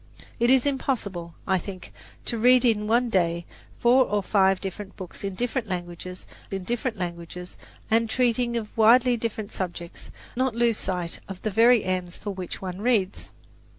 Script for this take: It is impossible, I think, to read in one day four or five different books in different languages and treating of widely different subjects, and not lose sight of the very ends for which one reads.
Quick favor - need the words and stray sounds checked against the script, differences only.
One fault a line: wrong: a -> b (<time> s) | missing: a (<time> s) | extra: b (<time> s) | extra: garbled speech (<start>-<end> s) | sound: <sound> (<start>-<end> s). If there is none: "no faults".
extra: in different languages (6.5 s)
missing: and (10.1 s)